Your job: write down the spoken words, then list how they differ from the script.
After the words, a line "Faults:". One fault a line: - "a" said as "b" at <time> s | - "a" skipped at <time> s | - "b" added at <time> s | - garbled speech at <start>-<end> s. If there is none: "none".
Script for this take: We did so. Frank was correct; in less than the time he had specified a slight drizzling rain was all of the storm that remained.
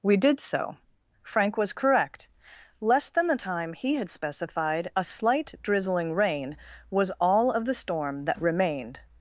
We did so. Frank was correct; less than the time he had specified a slight drizzling rain was all of the storm that remained.
Faults:
- "in" skipped at 2.3 s